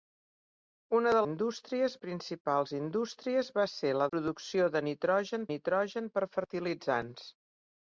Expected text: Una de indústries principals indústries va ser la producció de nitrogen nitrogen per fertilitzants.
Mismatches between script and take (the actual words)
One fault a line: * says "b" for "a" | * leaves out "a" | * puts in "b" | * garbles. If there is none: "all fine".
all fine